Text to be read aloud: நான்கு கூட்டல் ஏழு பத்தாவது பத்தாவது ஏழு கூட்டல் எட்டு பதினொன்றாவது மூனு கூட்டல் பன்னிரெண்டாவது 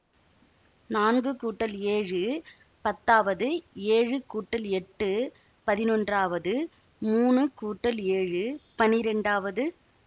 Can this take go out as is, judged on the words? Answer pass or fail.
fail